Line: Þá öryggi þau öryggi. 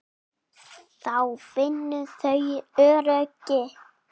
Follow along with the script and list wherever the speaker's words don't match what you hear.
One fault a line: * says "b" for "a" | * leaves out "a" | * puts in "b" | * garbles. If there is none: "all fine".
* says "finna" for "öryggi"